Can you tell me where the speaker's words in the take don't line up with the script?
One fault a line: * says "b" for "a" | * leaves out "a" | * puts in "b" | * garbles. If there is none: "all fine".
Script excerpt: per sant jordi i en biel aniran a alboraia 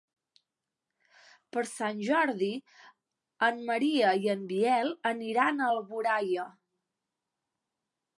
* puts in "en maria"